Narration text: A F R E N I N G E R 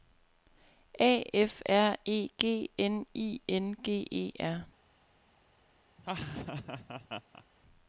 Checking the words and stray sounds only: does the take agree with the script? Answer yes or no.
no